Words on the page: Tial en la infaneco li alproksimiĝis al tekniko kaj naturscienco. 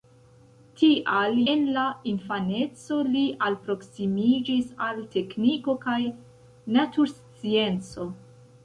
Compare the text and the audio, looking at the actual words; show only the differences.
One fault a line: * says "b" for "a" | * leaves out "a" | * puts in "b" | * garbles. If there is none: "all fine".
all fine